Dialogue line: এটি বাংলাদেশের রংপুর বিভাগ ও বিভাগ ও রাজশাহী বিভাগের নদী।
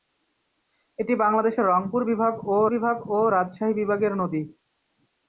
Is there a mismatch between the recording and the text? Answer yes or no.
no